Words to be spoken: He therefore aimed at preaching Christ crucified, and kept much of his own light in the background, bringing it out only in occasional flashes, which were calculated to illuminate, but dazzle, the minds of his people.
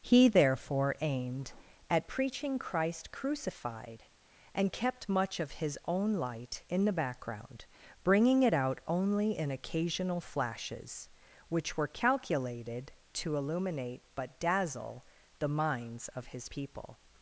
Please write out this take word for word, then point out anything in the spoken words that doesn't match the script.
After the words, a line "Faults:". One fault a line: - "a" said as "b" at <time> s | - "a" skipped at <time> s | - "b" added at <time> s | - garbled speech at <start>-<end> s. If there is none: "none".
He therefore aimed at preaching Christ crucified, and kept much of his own light in the background, bringing it out only in occasional flashes, which were calculated to illuminate, but dazzle, the minds of his people.
Faults:
none